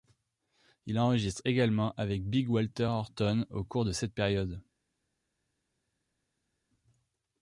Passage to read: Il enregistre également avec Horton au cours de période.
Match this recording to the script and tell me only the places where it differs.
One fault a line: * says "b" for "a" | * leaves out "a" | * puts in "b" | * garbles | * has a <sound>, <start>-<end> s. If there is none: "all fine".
* puts in "Big Walter"
* puts in "cette"